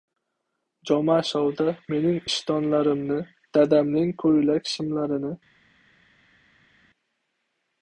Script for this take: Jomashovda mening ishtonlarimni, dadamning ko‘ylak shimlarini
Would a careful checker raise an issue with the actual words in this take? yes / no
no